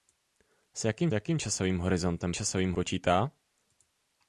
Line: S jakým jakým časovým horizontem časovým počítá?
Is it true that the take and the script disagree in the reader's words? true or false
false